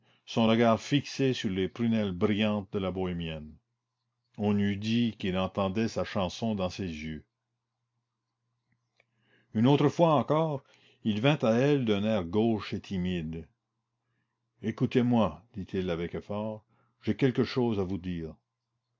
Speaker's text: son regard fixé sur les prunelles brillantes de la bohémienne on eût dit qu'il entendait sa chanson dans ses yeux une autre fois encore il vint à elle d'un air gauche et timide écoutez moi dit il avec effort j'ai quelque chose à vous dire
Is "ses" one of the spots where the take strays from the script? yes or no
no